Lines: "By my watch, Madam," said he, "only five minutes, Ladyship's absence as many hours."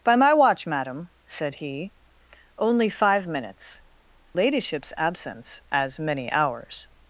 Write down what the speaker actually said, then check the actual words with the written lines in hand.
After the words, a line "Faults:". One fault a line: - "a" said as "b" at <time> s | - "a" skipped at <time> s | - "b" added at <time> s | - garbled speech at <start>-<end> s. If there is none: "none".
"By my watch, Madam," said he, "only five minutes, Ladyship's absence as many hours."
Faults:
none